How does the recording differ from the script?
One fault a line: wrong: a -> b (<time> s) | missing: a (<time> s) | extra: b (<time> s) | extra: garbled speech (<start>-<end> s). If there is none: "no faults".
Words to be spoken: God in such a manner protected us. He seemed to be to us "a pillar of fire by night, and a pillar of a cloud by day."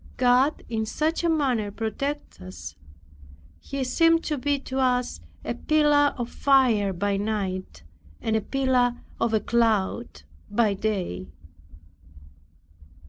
no faults